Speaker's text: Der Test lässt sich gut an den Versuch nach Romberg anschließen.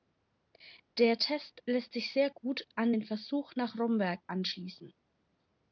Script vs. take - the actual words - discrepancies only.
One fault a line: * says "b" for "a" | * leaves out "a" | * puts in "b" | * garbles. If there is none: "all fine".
* puts in "sehr"